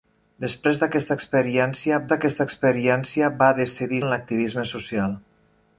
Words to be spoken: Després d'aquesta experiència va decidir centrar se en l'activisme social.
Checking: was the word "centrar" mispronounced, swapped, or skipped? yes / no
yes